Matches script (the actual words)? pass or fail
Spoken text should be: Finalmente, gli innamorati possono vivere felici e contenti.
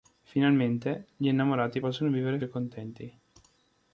fail